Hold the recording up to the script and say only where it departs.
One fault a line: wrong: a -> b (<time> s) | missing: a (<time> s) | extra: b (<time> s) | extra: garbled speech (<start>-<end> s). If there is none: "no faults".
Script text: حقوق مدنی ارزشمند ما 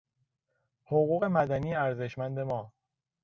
no faults